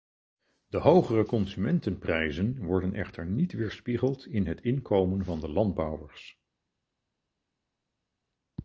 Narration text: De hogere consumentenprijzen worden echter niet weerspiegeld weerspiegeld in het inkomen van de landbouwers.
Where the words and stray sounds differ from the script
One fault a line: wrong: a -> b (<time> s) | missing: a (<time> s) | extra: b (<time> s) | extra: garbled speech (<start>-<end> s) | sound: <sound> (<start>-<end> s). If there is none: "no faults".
missing: weerspiegeld (4.3 s)